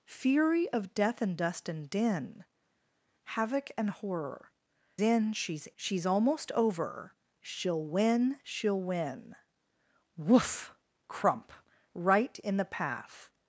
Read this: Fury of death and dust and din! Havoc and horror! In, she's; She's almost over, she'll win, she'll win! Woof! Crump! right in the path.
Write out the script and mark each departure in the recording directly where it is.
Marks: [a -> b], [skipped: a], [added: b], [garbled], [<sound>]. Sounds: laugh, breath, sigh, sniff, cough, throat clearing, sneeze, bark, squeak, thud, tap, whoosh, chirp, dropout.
Fury of death and dust and din! Havoc and horror! In, she's; She's almost over, she'll win, she'll win! Woof! Crump! right in the path.